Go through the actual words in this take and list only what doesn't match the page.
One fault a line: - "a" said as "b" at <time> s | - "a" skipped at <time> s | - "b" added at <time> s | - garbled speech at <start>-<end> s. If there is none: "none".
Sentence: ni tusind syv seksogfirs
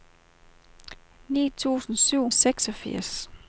none